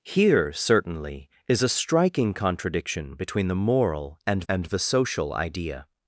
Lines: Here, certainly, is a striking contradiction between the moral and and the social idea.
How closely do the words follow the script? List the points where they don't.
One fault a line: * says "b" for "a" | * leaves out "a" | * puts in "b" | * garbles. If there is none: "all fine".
all fine